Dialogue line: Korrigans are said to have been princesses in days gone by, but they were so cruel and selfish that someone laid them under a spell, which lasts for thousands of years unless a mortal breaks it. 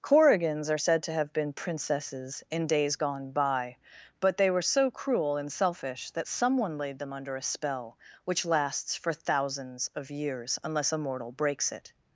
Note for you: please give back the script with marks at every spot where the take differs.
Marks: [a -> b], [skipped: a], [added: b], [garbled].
Korrigans are said to have been princesses in days gone by, but they were so cruel and selfish that someone laid them under a spell, which lasts for thousands of years unless a mortal breaks it.